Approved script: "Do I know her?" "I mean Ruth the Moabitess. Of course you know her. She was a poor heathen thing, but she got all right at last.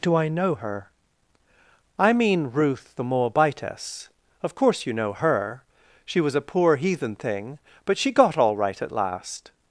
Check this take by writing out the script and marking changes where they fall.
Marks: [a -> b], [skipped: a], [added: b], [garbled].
"Do I know her?" "I mean Ruth the Moabitess. Of course you know her. She was a poor heathen thing, but she got all right at last.